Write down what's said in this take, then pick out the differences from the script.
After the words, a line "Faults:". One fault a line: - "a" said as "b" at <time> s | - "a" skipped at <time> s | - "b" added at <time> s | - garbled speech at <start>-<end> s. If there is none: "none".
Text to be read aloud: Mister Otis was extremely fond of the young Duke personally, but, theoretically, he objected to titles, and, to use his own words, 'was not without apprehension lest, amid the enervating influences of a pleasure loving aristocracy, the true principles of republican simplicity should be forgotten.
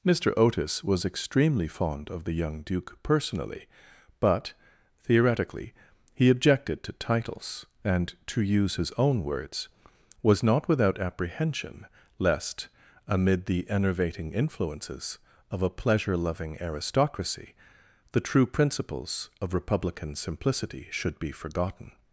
Mister Otis was extremely fond of the young Duke personally, but, theoretically, he objected to titles, and, to use his own words, 'was not without apprehension lest, amid the enervating influences of a pleasure loving aristocracy, the true principles of republican simplicity should be forgotten.
Faults:
none